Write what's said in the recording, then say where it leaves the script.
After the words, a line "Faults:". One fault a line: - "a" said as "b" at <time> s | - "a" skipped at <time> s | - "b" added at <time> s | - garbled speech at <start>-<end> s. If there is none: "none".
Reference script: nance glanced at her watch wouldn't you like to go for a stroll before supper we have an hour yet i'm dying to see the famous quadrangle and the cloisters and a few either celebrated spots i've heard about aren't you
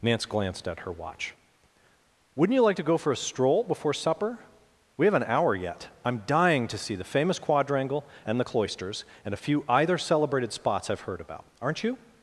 nance glanced at her watch wouldn't you like to go for a stroll before supper we have an hour yet i'm dying to see the famous quadrangle and the cloisters and a few either celebrated spots i've heard about aren't you
Faults:
none